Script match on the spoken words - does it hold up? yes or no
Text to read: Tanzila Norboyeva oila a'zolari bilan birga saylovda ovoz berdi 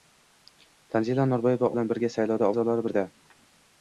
no